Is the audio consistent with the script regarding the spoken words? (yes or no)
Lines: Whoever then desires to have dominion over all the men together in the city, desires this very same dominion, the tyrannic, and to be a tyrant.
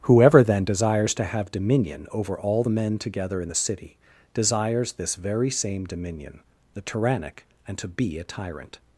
yes